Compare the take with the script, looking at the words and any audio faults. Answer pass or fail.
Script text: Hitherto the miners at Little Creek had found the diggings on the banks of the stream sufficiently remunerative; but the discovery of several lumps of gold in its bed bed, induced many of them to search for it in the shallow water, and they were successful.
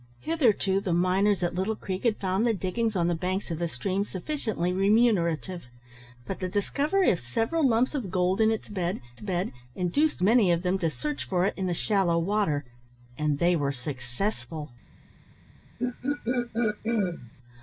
fail